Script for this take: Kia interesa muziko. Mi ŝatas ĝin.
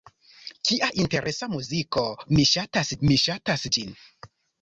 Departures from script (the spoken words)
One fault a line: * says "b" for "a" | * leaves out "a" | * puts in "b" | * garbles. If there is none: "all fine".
* puts in "mi ŝatas"